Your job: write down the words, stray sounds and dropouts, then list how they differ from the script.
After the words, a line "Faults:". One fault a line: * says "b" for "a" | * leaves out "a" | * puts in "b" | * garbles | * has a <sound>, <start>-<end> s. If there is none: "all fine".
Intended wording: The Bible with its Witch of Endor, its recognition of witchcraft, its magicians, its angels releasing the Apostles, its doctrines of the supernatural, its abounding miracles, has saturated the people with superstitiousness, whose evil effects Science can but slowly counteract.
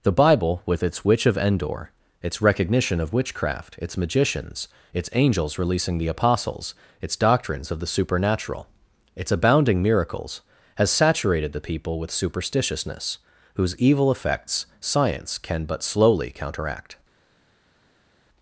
The Bible with its Witch of Endor, its recognition of witchcraft, its magicians, its angels releasing the Apostles, its doctrines of the supernatural, its abounding miracles, has saturated the people with superstitiousness, whose evil effects Science can but slowly counteract.
Faults:
all fine